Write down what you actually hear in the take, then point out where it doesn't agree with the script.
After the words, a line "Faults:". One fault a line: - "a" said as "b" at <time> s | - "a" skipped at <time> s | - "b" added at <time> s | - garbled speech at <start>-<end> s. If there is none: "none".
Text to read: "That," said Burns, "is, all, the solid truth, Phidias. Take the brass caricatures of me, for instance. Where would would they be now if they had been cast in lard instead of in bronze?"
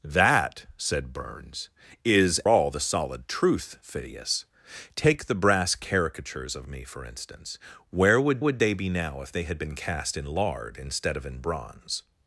"That," said Burns, "is, all, the solid truth, Phidias. Take the brass caricatures of me, for instance. Where would would they be now if they had been cast in lard instead of in bronze?"
Faults:
none